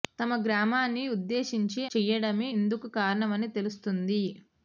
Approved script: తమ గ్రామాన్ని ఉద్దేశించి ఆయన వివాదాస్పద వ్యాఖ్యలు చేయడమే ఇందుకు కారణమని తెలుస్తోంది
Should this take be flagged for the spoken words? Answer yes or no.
yes